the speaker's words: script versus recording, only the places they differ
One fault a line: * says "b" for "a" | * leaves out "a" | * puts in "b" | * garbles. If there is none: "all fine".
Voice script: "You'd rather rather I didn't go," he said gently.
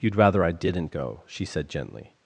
* leaves out "rather"
* says "she" for "he"